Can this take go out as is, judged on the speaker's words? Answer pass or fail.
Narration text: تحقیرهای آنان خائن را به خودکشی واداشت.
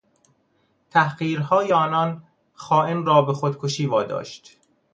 pass